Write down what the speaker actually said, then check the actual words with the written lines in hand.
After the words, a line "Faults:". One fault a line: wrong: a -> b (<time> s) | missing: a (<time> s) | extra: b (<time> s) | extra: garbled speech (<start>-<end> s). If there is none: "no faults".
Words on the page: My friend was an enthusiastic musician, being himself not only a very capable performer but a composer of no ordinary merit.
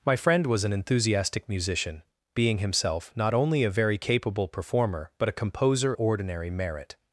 My friend was an enthusiastic musician, being himself not only a very capable performer but a composer ordinary merit.
Faults:
missing: of no (5.9 s)